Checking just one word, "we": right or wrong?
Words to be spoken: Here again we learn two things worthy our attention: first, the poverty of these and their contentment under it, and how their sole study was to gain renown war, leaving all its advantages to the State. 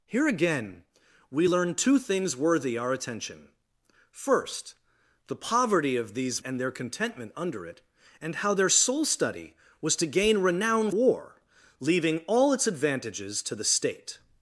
right